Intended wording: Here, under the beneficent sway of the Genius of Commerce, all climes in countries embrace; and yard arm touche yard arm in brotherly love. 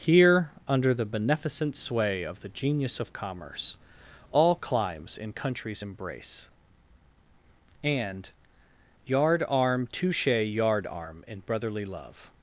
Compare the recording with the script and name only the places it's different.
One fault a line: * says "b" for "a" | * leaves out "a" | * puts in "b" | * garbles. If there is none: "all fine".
all fine